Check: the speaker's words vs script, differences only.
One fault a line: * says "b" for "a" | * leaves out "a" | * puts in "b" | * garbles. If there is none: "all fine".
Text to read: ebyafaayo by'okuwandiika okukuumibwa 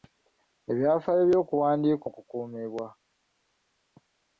all fine